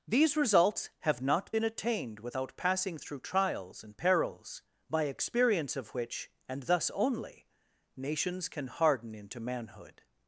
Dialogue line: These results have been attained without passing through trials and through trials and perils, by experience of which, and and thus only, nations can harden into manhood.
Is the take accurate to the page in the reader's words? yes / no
no